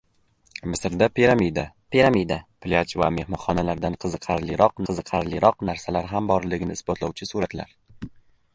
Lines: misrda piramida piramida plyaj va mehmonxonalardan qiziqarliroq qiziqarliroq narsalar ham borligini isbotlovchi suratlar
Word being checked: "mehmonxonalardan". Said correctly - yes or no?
yes